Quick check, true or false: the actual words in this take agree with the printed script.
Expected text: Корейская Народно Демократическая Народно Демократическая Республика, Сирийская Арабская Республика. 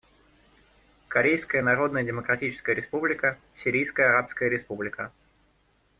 false